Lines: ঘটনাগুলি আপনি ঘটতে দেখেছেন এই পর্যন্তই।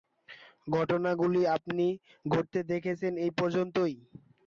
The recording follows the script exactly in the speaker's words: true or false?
true